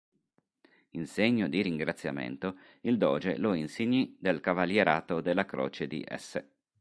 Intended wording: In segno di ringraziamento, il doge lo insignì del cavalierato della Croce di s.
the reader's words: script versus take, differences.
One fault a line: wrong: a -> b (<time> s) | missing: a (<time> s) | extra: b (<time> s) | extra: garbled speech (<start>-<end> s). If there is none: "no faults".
no faults